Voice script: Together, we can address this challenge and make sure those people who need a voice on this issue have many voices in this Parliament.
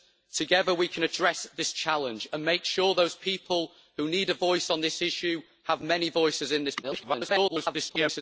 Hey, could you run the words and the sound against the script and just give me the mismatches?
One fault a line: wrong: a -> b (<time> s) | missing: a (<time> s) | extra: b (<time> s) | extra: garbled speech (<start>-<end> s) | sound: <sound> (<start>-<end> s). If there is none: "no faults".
extra: garbled speech (6.8-8.2 s)